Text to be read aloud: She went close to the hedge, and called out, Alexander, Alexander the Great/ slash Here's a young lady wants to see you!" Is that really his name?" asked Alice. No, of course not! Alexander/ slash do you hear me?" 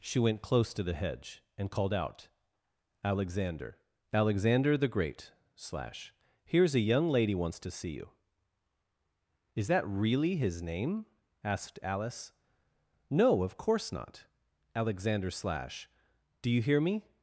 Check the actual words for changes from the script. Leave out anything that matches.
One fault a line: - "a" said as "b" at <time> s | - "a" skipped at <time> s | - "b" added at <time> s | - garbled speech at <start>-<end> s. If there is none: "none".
none